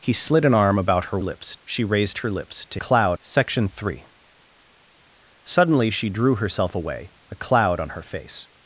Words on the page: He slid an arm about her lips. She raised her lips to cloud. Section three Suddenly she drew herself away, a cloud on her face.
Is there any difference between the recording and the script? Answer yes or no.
no